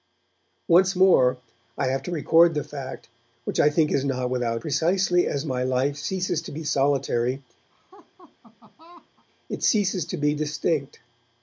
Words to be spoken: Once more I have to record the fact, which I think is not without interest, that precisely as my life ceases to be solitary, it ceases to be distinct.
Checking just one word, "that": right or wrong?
wrong